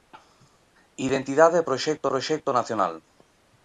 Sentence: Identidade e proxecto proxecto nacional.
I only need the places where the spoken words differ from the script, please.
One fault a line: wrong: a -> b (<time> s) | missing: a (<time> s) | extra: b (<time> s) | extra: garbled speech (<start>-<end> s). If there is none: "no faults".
no faults